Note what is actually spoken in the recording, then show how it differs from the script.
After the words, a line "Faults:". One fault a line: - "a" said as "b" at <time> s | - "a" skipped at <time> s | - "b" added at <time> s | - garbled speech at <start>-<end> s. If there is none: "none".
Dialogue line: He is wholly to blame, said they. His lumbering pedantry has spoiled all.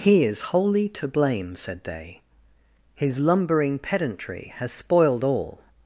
He is wholly to blame, said they. His lumbering pedantry has spoiled all.
Faults:
none